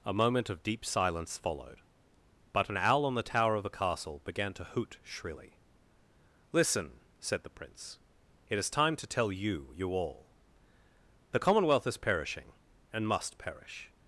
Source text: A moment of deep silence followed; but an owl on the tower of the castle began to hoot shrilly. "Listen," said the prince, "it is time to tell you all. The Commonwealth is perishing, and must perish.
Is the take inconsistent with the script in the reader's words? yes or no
yes